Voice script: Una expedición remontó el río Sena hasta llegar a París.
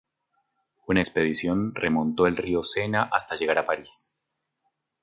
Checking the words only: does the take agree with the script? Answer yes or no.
yes